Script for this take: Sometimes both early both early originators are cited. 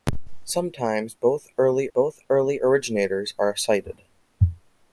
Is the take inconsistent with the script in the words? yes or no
no